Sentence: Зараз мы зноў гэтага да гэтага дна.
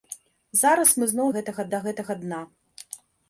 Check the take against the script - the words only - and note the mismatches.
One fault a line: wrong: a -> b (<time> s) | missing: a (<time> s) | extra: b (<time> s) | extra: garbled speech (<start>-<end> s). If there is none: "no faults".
no faults